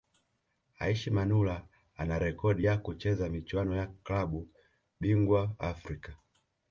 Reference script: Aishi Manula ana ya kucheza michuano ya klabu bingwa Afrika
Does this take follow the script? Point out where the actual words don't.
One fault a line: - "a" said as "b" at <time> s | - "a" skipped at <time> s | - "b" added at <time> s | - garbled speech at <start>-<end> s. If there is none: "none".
- "rekodi" added at 2.2 s